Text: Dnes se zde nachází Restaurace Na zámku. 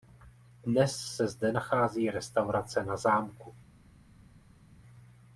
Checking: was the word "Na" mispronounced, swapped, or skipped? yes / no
no